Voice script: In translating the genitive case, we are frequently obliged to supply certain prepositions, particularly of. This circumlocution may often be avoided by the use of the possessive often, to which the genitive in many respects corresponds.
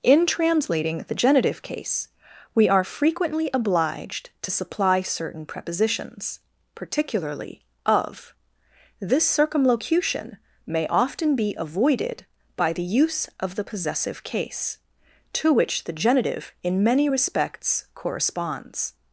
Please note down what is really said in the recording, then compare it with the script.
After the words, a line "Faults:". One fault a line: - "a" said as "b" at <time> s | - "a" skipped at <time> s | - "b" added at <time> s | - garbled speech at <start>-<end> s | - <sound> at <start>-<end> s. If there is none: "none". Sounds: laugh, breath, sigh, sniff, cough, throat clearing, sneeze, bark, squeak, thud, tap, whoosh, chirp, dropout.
In translating the genitive case, we are frequently obliged to supply certain prepositions, particularly of. This circumlocution may often be avoided by the use of the possessive case, to which the genitive in many respects corresponds.
Faults:
- "often" said as "case" at 14.2 s